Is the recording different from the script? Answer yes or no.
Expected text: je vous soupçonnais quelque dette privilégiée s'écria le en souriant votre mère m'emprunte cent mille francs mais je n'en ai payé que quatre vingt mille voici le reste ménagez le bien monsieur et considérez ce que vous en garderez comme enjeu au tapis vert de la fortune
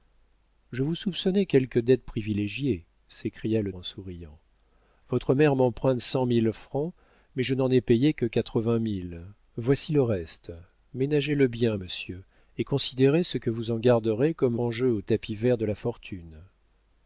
no